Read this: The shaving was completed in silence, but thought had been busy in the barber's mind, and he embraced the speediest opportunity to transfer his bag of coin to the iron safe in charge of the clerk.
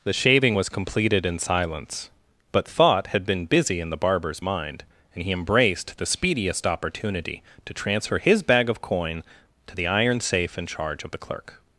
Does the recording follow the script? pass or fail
pass